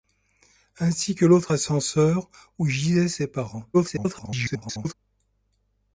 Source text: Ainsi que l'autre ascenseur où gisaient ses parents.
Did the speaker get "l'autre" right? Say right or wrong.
right